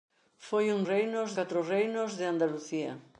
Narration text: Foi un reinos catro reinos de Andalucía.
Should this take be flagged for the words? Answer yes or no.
no